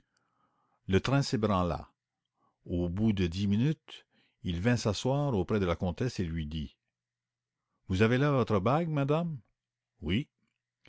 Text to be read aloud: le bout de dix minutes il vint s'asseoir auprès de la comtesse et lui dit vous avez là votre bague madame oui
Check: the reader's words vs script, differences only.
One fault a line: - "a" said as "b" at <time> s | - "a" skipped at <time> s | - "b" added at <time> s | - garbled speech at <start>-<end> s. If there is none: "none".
- "train s'ébranla au" added at 1.0 s